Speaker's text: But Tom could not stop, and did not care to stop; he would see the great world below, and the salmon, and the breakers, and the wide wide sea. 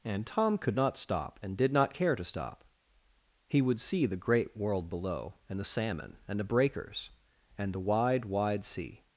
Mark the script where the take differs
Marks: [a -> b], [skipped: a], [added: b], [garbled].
[But -> And] Tom could not stop, and did not care to stop; he would see the great world below, and the salmon, and the breakers, and the wide wide sea.